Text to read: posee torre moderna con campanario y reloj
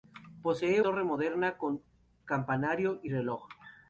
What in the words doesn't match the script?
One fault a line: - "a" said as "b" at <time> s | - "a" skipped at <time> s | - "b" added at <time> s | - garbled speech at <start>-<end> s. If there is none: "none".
none